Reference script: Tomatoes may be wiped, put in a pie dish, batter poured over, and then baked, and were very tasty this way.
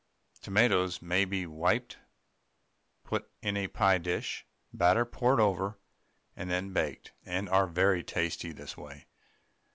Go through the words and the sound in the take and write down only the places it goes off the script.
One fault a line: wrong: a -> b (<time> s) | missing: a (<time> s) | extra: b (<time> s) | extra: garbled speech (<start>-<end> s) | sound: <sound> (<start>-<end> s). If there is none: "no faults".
wrong: were -> are (7.5 s)